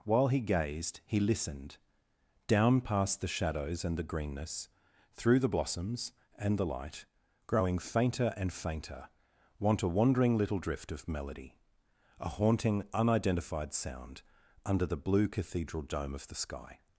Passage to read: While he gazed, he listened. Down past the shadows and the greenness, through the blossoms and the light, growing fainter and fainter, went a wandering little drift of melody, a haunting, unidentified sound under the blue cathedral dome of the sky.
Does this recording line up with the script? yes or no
no